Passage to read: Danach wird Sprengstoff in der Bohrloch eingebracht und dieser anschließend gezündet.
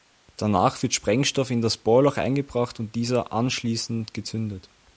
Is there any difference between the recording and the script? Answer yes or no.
yes